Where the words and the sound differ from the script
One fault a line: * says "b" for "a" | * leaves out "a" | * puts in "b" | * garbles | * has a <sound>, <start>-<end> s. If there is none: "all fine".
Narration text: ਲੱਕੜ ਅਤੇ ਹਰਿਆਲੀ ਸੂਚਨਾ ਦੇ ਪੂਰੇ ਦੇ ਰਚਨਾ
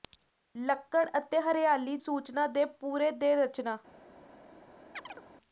* has a chirp, 4.9-5.2 s